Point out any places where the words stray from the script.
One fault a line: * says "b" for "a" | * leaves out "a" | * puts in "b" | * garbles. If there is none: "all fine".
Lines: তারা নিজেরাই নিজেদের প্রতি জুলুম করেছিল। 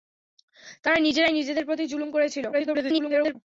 * garbles